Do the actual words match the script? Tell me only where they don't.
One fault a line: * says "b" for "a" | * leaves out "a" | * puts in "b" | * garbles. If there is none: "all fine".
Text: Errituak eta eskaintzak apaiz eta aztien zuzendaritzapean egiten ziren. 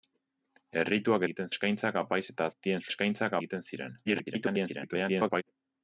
* says "egiten" for "eta"
* says "eskaintzak" for "zuzendaritzapean"
* garbles